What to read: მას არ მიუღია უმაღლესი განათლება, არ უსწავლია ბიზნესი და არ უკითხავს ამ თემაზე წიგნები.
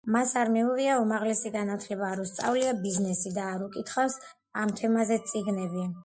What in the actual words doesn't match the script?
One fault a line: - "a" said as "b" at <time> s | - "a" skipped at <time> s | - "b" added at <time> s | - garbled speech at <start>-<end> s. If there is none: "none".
none